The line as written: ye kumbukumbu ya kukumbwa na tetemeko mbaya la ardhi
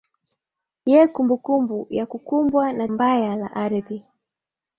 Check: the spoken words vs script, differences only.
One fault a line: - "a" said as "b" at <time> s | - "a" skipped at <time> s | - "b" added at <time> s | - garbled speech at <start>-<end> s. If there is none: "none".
- "tetemeko" skipped at 2.9 s